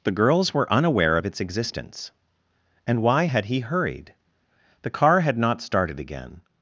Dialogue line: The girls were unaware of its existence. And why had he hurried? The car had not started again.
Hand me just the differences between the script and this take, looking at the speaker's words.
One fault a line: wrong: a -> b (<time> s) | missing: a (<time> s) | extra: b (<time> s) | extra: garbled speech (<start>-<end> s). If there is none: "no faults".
no faults